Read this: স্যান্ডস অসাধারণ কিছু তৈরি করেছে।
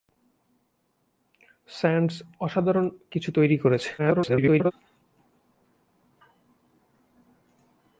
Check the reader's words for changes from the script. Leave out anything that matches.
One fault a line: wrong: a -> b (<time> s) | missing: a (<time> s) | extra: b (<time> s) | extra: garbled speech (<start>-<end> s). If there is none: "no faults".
extra: garbled speech (4.0-4.7 s)